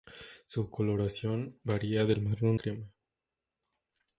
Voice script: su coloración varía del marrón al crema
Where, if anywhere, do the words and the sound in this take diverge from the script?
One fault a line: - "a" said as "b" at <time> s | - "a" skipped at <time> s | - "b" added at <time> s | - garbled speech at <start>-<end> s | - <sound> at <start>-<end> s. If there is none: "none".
- "al" skipped at 2.6 s